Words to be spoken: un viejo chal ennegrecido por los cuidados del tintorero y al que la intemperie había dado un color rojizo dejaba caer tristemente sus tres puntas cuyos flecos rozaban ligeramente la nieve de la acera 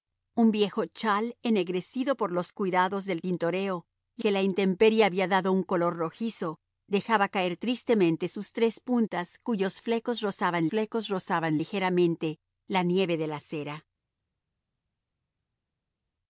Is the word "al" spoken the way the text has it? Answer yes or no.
no